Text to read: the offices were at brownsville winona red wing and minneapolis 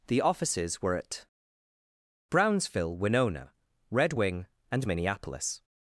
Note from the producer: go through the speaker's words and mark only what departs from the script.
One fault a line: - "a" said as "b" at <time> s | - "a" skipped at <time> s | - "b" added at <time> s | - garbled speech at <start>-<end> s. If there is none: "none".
none